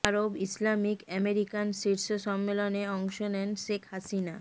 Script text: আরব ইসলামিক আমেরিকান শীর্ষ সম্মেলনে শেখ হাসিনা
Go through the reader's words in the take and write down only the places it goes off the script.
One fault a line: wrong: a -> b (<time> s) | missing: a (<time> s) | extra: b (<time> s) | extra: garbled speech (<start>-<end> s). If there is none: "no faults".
extra: অংশ নেন (3.0 s)